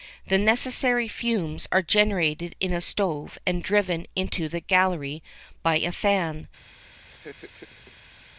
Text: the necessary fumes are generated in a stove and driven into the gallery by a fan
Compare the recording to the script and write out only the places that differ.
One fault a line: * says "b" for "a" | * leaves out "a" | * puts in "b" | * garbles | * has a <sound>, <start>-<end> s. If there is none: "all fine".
* has a laugh, 7.0-8.3 s